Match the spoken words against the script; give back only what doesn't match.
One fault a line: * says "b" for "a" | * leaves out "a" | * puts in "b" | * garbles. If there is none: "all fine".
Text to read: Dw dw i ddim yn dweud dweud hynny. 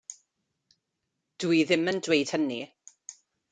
* leaves out "dw"
* leaves out "dweud"